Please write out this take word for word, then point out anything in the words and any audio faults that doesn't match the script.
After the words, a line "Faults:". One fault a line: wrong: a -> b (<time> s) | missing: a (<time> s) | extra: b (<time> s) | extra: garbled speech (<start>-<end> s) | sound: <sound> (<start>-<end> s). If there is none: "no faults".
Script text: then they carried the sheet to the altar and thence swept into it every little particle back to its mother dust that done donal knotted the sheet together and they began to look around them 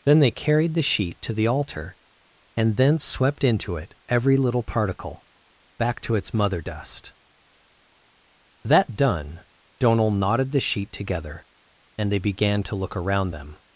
then they carried the sheet to the altar and thence swept into it every little particle back to its mother dust that done donal knotted the sheet together and they began to look around them
Faults:
no faults